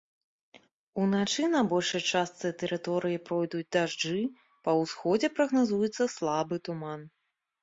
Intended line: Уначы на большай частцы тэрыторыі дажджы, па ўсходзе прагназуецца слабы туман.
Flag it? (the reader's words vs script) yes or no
yes